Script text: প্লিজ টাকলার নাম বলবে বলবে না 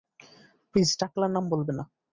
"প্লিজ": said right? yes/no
yes